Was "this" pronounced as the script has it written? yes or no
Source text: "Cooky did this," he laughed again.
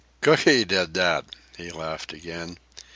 no